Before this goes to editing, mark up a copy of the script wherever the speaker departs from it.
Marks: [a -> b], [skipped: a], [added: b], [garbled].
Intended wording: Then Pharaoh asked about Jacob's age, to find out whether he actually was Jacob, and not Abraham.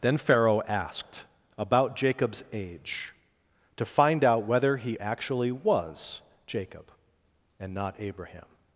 Then Pharaoh asked about Jacob's age, to find out whether he actually was Jacob, and not Abraham.